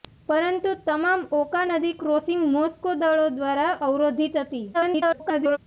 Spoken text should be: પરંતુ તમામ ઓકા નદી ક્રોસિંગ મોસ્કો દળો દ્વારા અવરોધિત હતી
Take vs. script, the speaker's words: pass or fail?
fail